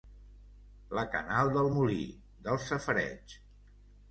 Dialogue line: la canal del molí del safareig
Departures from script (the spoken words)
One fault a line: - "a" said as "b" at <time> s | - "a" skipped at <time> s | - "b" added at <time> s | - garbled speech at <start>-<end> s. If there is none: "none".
none